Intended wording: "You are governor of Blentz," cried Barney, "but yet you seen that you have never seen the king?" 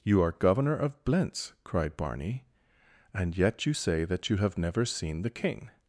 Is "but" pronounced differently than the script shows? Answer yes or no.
yes